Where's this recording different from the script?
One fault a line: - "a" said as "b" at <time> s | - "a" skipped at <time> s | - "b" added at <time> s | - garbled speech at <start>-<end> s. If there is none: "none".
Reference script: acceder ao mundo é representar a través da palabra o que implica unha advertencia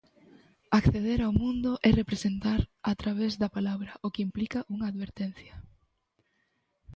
none